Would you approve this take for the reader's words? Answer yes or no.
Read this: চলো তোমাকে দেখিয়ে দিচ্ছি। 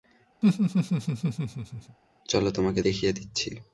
yes